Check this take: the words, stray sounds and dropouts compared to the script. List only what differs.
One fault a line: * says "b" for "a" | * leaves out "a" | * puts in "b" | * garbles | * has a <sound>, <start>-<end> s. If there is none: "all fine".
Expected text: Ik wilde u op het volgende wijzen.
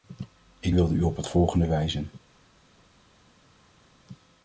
all fine